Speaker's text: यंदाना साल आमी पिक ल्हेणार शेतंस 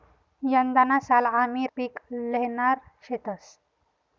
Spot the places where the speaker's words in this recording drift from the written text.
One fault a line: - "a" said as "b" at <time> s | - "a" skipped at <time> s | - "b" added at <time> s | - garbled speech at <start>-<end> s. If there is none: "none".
none